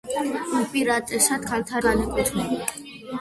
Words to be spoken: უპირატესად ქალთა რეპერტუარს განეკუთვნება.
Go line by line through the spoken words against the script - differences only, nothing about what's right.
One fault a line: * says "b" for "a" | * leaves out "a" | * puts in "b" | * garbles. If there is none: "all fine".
* leaves out "რეპერტუარს"